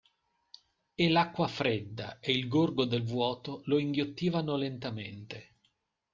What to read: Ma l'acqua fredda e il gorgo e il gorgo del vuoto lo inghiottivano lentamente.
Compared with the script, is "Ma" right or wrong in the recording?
wrong